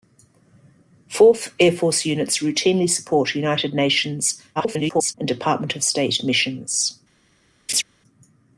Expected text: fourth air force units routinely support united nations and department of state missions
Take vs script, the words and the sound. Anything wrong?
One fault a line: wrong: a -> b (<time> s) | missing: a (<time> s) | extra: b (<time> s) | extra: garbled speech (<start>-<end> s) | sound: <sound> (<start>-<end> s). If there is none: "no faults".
extra: garbled speech (4.6-5.1 s)
sound: laugh (7.7-7.8 s)